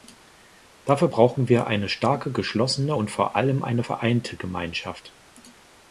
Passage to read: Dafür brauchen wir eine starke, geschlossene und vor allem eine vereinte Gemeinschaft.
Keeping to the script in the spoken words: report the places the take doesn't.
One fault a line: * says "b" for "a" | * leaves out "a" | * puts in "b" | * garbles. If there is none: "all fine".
all fine